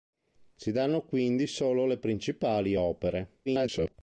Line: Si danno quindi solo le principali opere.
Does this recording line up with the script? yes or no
no